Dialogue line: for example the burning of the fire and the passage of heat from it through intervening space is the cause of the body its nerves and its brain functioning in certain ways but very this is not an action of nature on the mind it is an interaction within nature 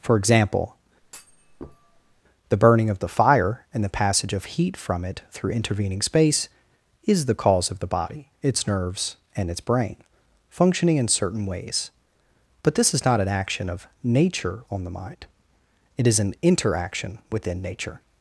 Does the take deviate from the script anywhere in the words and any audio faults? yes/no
yes